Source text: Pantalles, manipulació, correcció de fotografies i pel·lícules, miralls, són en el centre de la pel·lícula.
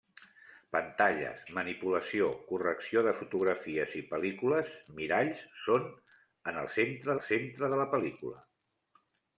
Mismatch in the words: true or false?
true